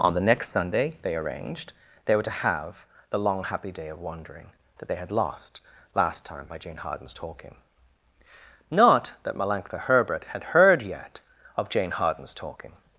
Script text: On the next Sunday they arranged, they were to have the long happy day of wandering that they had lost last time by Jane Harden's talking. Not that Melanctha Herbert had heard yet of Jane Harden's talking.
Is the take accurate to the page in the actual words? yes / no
yes